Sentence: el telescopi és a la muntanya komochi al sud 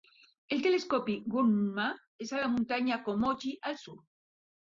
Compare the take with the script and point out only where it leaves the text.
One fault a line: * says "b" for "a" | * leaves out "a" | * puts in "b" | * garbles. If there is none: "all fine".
* puts in "gunma"